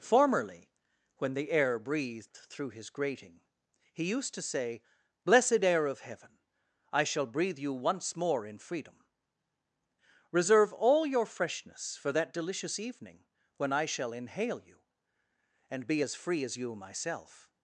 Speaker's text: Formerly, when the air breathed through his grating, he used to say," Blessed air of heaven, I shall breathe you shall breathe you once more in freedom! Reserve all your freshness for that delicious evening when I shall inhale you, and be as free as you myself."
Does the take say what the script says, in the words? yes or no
no